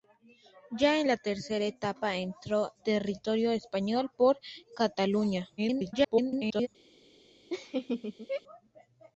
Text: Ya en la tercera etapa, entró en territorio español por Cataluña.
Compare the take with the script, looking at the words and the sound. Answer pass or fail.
fail